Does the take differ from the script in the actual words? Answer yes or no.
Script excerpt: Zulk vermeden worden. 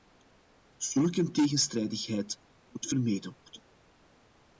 yes